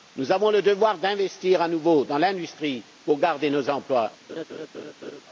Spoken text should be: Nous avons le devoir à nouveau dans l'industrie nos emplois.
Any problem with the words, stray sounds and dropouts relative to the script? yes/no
yes